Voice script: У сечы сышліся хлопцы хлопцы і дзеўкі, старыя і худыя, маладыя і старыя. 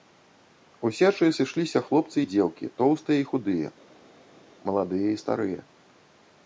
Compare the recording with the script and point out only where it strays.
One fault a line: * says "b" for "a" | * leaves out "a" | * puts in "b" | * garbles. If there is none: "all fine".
* leaves out "хлопцы"
* says "тоўстыя" for "старыя"